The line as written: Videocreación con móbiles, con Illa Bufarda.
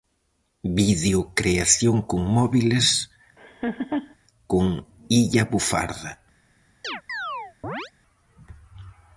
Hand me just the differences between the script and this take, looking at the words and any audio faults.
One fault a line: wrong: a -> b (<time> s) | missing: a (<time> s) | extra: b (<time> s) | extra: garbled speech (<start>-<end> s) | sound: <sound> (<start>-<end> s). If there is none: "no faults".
sound: laugh (3.4-4.2 s)
sound: chirp (6.8-7.9 s)